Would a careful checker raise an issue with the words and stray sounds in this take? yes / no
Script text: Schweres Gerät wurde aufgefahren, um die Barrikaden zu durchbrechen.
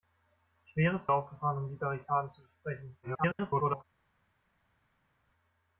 yes